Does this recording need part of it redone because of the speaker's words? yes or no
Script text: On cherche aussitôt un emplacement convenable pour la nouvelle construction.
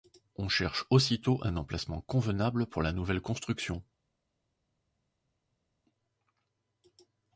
no